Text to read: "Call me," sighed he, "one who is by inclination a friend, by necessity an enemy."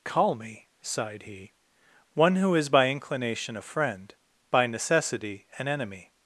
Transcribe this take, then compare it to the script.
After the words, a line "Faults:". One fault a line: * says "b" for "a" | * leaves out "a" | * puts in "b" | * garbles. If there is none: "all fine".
"Call me," sighed he, "one who is by inclination a friend, by necessity an enemy."
Faults:
all fine